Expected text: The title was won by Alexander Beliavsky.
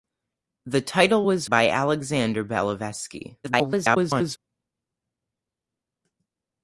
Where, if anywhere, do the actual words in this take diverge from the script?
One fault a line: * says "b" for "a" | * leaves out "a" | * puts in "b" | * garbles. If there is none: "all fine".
* leaves out "won"
* garbles